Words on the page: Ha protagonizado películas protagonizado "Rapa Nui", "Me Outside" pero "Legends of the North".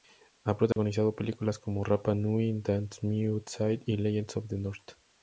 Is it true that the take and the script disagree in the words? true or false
true